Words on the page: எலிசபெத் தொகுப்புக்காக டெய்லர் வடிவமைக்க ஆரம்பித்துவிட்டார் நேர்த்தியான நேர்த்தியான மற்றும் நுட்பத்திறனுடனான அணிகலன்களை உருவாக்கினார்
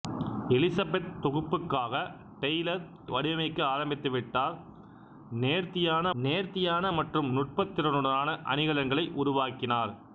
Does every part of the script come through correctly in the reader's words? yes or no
yes